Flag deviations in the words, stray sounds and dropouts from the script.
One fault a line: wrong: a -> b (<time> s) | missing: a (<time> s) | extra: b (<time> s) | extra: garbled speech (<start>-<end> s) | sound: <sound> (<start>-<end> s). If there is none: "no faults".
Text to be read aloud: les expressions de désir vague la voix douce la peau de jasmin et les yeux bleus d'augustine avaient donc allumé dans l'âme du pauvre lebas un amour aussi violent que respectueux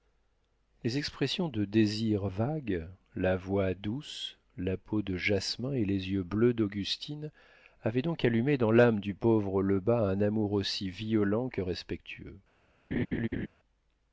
sound: laugh (12.9-13.5 s)